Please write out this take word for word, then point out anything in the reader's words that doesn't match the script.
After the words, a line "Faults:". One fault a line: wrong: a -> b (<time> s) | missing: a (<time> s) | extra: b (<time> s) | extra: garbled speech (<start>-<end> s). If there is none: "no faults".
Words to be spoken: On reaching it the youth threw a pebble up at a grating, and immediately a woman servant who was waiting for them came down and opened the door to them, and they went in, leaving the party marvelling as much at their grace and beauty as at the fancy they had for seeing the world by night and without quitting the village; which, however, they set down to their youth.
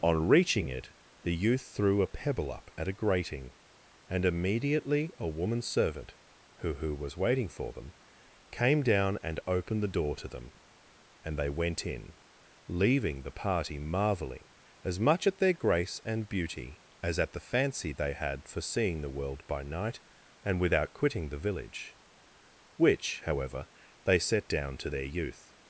On reaching it the youth threw a pebble up at a grating, and immediately a woman servant who who was waiting for them came down and opened the door to them, and they went in, leaving the party marvelling as much at their grace and beauty as at the fancy they had for seeing the world by night and without quitting the village; which, however, they set down to their youth.
Faults:
extra: who (6.7 s)